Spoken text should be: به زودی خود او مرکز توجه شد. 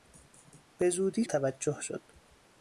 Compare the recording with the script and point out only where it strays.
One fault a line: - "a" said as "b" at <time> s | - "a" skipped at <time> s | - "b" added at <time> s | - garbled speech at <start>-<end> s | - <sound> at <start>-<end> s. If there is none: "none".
- "خود او مرکز" skipped at 1.2 s